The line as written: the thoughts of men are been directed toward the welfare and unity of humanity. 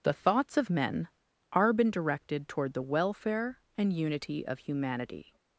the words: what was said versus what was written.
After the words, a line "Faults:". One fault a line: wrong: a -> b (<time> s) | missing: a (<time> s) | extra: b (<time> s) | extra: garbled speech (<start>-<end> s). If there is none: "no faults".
the thoughts of men are been directed toward the welfare and unity of humanity.
Faults:
no faults